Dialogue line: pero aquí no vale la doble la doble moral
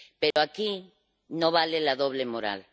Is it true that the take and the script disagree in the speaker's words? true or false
true